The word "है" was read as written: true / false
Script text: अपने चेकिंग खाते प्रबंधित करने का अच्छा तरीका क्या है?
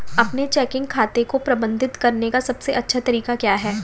true